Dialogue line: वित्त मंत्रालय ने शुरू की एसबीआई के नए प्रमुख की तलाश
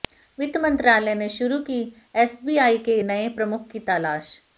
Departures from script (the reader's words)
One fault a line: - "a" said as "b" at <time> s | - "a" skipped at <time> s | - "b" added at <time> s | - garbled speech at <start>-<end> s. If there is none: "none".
none